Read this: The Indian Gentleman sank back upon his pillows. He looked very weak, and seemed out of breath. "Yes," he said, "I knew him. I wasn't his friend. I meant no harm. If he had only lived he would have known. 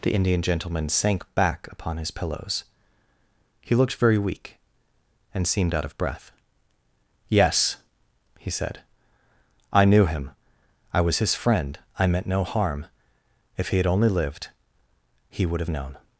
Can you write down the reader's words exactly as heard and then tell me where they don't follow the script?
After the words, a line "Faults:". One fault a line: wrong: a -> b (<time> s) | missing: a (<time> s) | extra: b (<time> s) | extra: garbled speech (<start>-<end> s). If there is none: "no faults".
The Indian Gentleman sank back upon his pillows. He looked very weak, and seemed out of breath. "Yes," he said, "I knew him. I was his friend. I meant no harm. If he had only lived he would have known.
Faults:
wrong: wasn't -> was (11.0 s)